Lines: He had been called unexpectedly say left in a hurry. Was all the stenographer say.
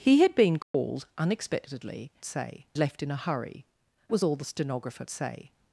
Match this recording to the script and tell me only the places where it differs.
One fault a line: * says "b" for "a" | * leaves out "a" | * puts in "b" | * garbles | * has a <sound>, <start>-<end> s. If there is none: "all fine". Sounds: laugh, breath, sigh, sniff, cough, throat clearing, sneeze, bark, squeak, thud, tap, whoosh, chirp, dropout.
* has a dropout, 0.6-0.7 s